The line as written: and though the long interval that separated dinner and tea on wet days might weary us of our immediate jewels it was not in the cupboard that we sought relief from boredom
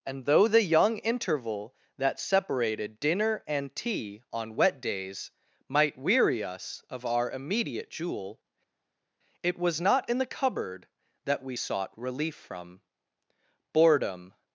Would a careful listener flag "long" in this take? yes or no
yes